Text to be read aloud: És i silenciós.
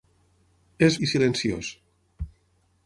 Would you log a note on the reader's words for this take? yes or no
no